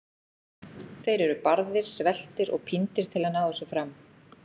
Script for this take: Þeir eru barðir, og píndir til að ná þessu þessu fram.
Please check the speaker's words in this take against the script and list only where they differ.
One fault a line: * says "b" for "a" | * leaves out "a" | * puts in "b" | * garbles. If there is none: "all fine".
* puts in "sveltir"
* leaves out "þessu"